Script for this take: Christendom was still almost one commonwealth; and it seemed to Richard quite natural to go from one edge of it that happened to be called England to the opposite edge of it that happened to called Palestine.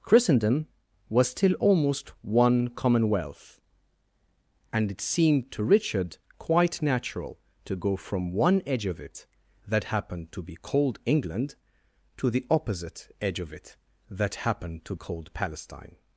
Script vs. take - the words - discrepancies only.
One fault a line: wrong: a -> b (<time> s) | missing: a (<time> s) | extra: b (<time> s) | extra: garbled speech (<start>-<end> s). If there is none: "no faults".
no faults